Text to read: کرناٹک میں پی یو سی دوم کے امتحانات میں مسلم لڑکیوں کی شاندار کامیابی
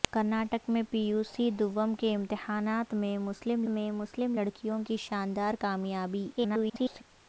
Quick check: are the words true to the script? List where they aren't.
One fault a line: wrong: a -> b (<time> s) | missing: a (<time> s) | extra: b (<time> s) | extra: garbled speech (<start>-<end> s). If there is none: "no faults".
extra: میں مسلم (3.7 s)
extra: garbled speech (6.4-7.0 s)